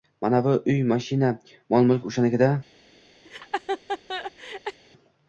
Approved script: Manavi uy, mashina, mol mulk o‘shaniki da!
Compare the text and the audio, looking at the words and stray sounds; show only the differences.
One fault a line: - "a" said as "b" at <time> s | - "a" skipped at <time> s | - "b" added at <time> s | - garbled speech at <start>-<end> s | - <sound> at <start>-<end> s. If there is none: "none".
- laugh at 3.2-4.8 s